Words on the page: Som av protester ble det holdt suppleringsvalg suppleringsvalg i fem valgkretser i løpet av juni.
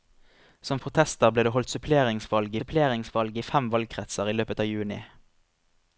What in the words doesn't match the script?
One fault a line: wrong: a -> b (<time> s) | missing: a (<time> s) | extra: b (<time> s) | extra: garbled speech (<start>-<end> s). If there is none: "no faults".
no faults